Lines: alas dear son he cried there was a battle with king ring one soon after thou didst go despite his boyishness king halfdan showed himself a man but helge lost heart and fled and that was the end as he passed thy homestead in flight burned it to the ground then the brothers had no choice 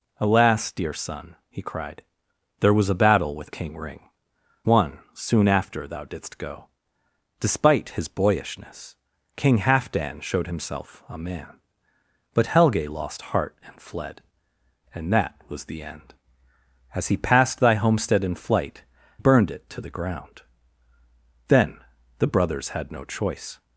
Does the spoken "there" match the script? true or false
true